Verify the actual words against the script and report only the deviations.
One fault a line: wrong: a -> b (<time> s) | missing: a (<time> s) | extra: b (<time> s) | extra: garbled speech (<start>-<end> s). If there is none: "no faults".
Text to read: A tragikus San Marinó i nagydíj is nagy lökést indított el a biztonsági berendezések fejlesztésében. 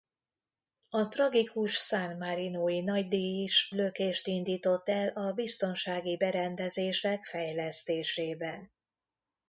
missing: nagy (3.7 s)